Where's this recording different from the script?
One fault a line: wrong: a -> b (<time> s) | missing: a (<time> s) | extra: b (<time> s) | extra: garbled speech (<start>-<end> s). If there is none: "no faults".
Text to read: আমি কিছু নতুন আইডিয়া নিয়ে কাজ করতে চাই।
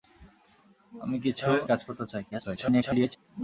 missing: নতুন আইডিয়া নিয়ে (1.5 s)
extra: garbled speech (2.3-3.2 s)